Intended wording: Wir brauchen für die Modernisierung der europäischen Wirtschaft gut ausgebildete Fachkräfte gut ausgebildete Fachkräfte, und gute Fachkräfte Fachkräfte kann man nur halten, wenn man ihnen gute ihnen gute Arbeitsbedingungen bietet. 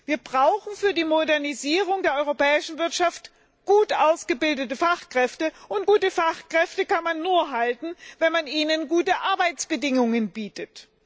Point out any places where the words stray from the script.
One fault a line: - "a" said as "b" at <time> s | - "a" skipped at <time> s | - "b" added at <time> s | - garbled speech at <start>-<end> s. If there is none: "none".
- "gut ausgebildete Fachkräfte" skipped at 5.5 s
- "Fachkräfte" skipped at 6.9 s
- "ihnen gute" skipped at 9.2 s